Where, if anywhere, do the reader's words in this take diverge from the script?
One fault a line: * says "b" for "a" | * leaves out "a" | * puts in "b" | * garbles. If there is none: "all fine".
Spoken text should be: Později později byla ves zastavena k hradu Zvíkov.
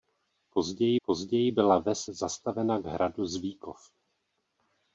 all fine